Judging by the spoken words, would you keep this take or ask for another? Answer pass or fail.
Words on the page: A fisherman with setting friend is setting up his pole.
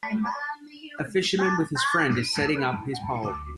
fail